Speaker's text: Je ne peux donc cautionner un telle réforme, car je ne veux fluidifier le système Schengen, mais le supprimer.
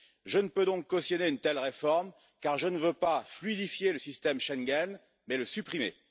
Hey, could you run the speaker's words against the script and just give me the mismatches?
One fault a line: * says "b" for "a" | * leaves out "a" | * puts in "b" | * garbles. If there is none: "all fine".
* says "une" for "un"
* puts in "pas"